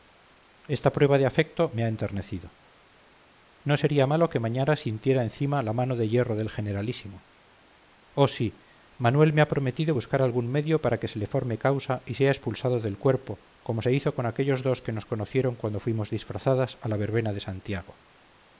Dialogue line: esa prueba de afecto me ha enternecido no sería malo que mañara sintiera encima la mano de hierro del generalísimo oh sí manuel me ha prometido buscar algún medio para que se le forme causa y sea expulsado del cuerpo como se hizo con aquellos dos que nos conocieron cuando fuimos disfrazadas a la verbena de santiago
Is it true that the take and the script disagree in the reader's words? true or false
true